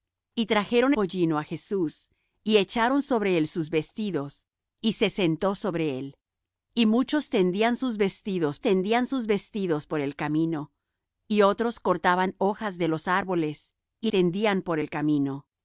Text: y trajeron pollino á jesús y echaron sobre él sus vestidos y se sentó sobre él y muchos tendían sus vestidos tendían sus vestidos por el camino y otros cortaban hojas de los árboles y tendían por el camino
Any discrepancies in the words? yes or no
no